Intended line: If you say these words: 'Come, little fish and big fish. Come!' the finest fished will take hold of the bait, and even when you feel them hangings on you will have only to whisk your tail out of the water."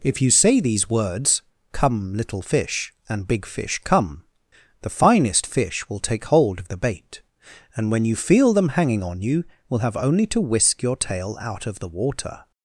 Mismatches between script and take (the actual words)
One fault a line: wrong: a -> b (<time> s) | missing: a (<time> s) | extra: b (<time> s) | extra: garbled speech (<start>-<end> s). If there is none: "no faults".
wrong: fished -> fish (5.5 s)
missing: even (7.9 s)
wrong: hangings -> hanging (8.7 s)